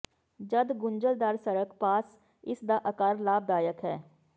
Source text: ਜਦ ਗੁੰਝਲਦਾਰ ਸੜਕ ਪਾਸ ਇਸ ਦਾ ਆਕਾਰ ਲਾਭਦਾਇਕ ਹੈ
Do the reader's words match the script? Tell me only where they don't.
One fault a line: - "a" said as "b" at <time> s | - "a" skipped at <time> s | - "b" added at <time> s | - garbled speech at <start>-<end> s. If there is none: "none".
none